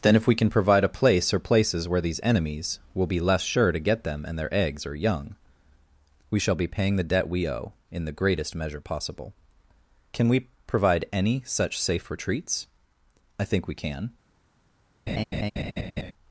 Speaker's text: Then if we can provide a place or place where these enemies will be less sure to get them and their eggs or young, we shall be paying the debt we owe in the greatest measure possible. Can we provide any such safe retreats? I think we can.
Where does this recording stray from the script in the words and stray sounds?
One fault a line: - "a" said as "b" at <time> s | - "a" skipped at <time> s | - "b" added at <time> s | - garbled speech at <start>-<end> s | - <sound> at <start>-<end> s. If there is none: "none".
- "place" said as "places" at 1.4 s
- laugh at 15.1-16.1 s